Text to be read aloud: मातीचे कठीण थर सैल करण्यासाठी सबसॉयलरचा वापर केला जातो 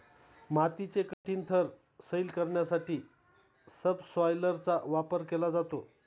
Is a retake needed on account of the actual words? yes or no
no